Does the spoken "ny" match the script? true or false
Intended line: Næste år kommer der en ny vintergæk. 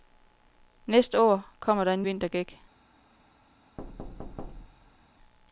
false